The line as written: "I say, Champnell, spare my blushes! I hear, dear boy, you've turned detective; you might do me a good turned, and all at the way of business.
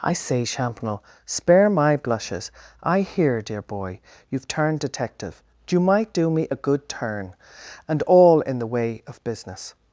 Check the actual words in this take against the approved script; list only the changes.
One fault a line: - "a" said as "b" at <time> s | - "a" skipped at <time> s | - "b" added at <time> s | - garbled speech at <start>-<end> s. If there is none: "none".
- "turned" said as "turn" at 6.9 s
- "at" said as "in" at 8.4 s